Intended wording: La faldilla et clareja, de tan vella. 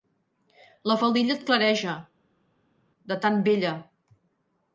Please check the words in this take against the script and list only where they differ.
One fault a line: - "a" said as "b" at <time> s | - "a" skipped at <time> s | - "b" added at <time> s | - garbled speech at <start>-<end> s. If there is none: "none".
none